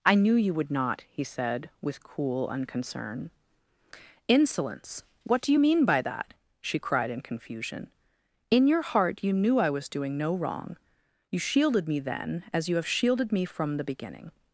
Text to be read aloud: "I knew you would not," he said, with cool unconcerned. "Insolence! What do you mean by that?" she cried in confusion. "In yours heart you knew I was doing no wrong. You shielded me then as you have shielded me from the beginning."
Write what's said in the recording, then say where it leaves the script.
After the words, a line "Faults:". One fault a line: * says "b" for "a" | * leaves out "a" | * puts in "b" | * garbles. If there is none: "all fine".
"I knew you would not," he said, with cool unconcern. "Insolence! What do you mean by that?" she cried in confusion. "In your heart you knew I was doing no wrong. You shielded me then as you have shielded me from the beginning."
Faults:
* says "unconcern" for "unconcerned"
* says "your" for "yours"